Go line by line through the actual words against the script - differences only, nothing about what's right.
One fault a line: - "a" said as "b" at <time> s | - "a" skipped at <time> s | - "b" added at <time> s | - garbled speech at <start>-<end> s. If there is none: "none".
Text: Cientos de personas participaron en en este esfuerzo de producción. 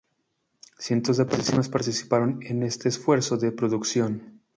- "en" skipped at 2.6 s